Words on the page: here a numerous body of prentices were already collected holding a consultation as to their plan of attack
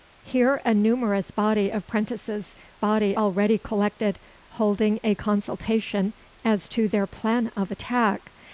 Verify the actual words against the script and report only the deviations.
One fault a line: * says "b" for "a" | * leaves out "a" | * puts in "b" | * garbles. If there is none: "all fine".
* says "body" for "were"